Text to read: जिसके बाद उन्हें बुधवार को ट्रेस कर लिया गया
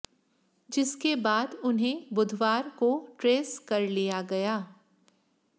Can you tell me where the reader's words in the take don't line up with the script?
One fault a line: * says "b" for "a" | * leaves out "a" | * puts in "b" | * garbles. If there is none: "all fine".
all fine